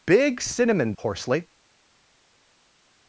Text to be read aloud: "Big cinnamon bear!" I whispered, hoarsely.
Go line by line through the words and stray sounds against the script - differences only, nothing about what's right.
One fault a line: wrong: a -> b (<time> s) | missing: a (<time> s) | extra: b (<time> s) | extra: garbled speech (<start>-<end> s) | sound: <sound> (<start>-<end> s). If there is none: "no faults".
missing: bear I whispered (0.9 s)